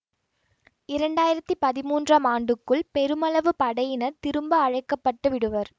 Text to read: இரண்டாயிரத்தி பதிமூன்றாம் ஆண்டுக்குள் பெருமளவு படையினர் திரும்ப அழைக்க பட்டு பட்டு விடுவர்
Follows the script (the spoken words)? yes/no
no